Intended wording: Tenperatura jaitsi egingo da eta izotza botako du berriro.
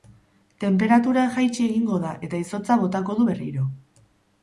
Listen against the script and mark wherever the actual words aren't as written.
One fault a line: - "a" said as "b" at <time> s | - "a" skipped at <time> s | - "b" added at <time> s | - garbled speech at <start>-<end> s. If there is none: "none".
none